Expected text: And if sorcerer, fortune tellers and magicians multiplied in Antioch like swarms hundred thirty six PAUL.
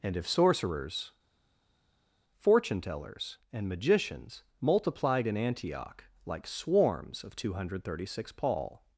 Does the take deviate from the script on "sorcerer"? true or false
true